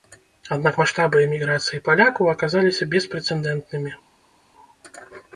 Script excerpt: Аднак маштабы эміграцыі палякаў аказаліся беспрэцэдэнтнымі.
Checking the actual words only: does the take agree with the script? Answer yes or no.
yes